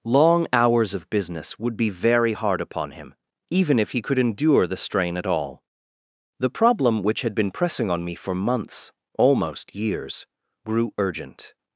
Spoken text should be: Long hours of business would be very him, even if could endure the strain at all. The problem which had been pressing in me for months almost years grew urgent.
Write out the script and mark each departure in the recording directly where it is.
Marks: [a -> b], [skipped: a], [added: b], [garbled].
Long hours of business would be very [added: hard upon] him, even if [added: he] could endure the strain at all. The problem which had been pressing [in -> on] me for months almost years grew urgent.